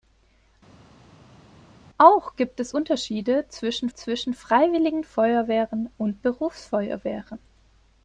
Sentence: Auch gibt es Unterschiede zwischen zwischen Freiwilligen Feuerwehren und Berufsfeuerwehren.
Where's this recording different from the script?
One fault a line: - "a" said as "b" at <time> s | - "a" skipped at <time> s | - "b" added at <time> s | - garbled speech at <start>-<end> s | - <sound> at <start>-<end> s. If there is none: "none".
none